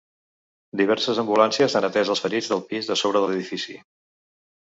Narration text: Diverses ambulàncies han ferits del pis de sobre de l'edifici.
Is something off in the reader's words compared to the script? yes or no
yes